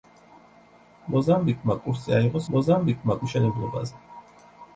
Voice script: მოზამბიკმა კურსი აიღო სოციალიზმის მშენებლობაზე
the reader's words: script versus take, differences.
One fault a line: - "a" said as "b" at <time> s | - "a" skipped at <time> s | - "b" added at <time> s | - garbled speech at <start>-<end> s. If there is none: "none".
- "სოციალიზმის" said as "მოზამბიკმა" at 2.6 s